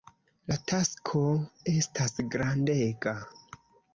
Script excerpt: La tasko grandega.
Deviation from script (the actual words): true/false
true